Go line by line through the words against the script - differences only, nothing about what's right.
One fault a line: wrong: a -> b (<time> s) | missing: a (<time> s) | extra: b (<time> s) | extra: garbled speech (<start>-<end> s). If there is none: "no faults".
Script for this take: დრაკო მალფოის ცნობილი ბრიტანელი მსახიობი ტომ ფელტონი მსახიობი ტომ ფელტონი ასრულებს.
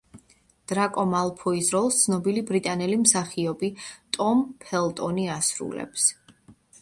extra: როლს (1.7 s)
missing: მსახიობი ტომ ფელტონი (5.3 s)